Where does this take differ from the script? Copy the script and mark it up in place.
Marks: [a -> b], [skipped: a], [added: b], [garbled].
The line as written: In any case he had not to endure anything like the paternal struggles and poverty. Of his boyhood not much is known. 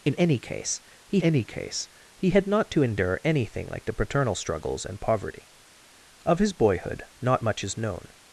In any case he [added: any case he] had not to endure anything like the paternal struggles and poverty. Of his boyhood not much is known.